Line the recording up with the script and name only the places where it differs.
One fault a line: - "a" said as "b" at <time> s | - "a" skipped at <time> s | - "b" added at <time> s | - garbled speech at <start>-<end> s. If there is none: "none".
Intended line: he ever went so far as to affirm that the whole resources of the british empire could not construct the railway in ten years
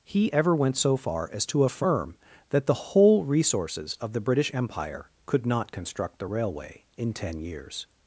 none